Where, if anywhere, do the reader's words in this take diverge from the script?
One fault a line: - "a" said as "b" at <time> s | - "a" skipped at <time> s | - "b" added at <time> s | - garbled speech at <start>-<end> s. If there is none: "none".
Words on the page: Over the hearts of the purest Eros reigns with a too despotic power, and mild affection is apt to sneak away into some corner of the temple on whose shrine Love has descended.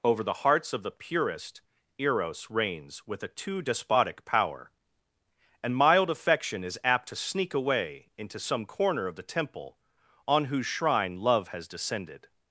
none